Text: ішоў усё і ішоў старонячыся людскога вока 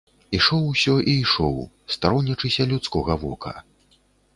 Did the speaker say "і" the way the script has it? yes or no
yes